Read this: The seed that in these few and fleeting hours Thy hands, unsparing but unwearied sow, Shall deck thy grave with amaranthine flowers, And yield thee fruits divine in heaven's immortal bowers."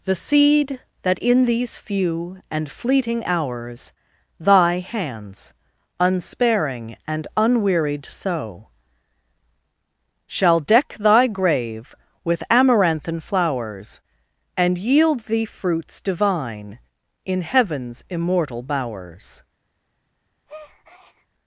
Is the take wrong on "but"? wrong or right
wrong